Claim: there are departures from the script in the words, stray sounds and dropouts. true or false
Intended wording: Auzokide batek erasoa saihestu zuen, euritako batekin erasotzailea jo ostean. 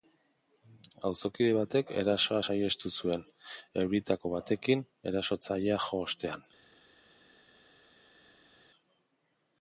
false